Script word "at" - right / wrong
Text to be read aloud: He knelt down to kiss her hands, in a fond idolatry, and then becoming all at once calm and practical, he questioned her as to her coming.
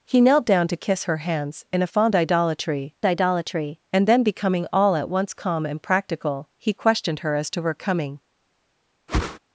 right